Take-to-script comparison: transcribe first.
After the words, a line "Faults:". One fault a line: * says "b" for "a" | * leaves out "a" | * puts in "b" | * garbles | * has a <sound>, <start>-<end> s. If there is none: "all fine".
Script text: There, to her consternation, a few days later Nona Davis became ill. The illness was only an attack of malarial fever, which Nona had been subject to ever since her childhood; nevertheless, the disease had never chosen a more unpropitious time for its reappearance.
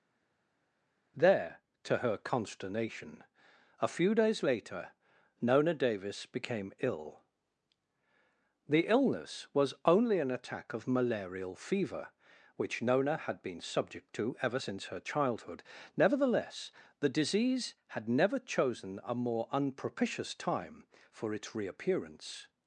There, to her consternation, a few days later Nona Davis became ill. The illness was only an attack of malarial fever, which Nona had been subject to ever since her childhood; nevertheless, the disease had never chosen a more unpropitious time for its reappearance.
Faults:
all fine